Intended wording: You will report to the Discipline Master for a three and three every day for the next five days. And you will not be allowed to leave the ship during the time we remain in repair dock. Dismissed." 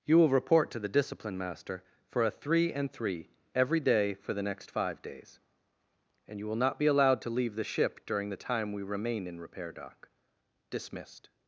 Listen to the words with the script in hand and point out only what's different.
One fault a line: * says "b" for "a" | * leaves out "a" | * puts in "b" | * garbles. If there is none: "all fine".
all fine